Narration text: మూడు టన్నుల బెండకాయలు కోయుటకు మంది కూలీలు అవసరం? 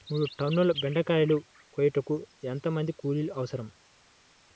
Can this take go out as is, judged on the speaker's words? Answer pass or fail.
fail